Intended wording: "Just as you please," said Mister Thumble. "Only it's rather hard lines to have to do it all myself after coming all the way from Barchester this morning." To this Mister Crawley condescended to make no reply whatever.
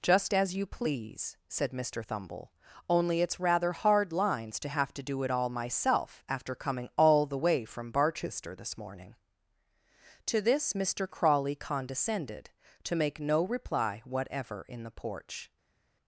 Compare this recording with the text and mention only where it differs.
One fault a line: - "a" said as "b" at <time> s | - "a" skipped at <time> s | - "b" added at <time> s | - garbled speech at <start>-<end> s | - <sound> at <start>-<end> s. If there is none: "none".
- "In the porch" added at 14.7 s